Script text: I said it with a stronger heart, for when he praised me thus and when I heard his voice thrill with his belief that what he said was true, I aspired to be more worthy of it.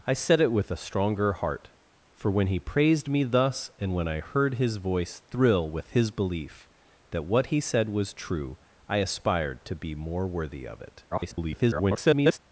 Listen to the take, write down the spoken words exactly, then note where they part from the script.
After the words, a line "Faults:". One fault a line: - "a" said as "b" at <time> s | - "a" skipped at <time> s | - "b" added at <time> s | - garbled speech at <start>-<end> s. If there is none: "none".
I said it with a stronger heart, for when he praised me thus and when I heard his voice thrill with his belief that what he said was true, I aspired to be more worthy of it. [garbled]
Faults:
- garbled speech at 11.1-12.4 s